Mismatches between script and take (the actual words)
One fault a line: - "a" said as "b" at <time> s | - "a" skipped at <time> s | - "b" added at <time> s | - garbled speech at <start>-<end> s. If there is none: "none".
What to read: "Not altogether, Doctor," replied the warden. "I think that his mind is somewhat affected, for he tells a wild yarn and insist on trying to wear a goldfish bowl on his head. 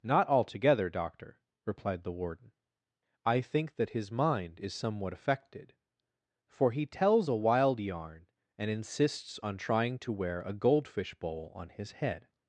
- "insist" said as "insists" at 8.7 s